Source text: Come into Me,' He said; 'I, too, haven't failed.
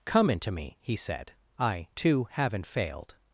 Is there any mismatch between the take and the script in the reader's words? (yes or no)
no